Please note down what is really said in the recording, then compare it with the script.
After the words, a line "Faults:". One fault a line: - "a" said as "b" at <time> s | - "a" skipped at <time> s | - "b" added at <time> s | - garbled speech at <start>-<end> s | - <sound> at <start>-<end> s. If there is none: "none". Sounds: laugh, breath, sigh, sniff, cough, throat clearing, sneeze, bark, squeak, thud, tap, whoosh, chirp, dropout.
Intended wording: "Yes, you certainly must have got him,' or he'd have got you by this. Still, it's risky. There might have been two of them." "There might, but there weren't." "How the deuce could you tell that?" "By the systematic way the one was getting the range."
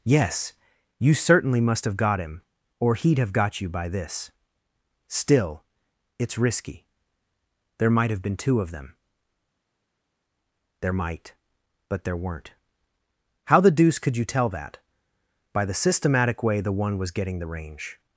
"Yes, you certainly must have got him,' or he'd have got you by this. Still, it's risky. There might have been two of them." "There might, but there weren't." "How the deuce could you tell that?" "By the systematic way the one was getting the range."
Faults:
none